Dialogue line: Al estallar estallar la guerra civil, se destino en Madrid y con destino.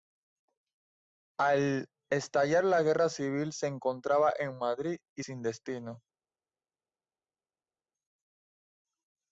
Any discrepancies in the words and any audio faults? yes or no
yes